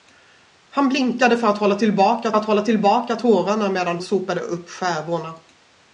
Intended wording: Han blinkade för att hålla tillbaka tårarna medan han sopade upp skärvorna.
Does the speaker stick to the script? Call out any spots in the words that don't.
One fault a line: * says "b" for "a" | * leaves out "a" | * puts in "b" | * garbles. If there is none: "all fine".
* puts in "att hålla tillbaka"
* leaves out "han"